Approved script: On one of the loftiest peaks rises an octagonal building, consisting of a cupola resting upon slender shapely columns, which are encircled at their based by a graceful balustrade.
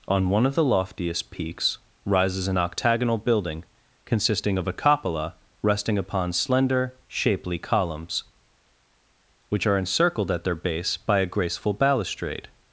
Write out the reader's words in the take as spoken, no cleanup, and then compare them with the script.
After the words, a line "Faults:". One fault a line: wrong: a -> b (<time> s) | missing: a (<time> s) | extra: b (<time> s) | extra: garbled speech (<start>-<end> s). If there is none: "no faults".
On one of the loftiest peaks rises an octagonal building, consisting of a cupola resting upon slender shapely columns, which are encircled at their base by a graceful balustrade.
Faults:
wrong: based -> base (10.5 s)